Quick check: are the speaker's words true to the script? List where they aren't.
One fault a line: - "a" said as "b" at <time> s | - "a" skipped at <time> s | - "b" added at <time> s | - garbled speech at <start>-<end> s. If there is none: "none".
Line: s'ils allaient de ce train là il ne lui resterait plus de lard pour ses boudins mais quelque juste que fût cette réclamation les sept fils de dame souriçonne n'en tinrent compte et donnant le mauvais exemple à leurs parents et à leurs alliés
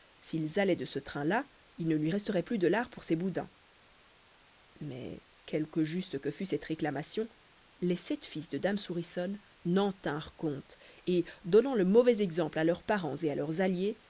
none